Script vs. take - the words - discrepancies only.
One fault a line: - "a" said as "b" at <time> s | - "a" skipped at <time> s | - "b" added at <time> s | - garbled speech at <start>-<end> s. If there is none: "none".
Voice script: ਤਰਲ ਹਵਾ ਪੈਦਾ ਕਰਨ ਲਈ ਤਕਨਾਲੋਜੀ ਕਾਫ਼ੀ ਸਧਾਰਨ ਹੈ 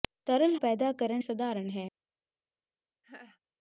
- "ਹਵਾ" skipped at 0.6 s
- "ਲਈ ਤਕਨਾਲੋਜੀ ਕਾਫ਼ੀ" skipped at 1.2 s